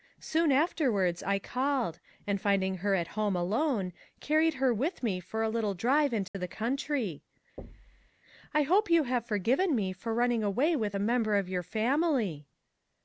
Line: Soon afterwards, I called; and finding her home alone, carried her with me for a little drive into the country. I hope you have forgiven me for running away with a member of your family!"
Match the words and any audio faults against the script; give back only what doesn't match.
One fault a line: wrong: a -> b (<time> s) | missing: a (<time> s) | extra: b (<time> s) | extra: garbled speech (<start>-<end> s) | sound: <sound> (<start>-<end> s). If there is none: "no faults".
extra: at (3.0 s)
sound: dropout (6.3-6.3 s)
sound: thud (7.6-8.1 s)